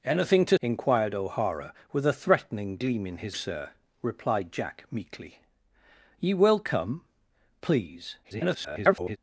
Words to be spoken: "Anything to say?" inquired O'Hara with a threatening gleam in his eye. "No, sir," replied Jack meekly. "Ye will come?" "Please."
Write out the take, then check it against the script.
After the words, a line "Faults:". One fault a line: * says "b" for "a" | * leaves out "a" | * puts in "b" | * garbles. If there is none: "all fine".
"Anything to?" inquired O'Hara with a threatening gleam in his sir," replied Jack meekly. "Ye will come?" "Please." [garbled]
Faults:
* leaves out "say"
* leaves out "eye No"
* garbles